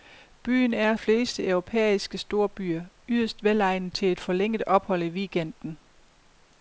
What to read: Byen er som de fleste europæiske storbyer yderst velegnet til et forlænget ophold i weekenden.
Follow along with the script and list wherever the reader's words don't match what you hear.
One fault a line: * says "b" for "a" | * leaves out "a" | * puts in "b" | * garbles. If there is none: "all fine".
* leaves out "som de"